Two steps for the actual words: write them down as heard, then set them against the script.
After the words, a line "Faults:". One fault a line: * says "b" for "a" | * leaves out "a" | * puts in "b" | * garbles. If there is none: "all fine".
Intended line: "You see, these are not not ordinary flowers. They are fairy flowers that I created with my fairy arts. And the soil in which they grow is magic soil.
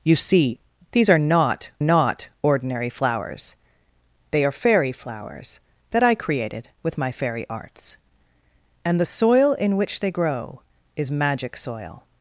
"You see, these are not not ordinary flowers. They are fairy flowers that I created with my fairy arts. And the soil in which they grow is magic soil.
Faults:
all fine